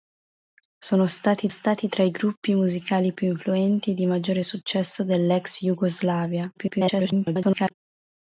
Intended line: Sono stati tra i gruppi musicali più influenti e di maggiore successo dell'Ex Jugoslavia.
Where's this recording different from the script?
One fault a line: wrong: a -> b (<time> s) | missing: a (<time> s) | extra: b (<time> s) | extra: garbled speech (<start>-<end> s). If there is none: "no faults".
extra: stati (1.5 s)
extra: garbled speech (6.6-7.7 s)